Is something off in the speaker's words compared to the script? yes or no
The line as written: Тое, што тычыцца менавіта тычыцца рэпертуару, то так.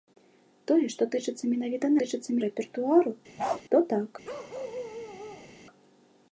no